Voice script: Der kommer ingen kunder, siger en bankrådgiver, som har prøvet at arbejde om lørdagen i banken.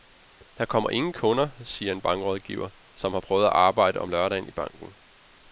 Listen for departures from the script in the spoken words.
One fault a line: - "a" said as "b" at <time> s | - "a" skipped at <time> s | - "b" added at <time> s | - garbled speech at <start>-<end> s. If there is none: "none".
none